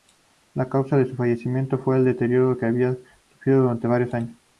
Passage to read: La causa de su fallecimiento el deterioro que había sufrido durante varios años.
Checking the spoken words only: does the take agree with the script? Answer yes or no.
no